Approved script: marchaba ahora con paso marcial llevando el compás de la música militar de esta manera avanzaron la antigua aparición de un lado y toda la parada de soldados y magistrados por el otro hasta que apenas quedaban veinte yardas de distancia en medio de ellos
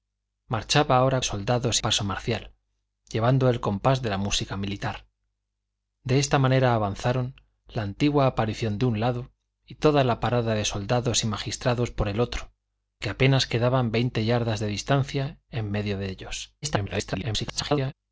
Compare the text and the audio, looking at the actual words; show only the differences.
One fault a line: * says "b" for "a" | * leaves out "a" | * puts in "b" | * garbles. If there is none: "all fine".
* says "soldados" for "con"
* leaves out "hasta"
* garbles